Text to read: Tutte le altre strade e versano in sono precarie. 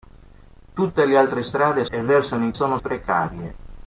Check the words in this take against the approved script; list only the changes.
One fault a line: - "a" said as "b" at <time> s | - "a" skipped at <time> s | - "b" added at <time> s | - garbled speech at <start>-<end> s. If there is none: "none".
none